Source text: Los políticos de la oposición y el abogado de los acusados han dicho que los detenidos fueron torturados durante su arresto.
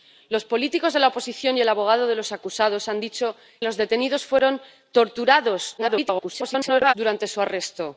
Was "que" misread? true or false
true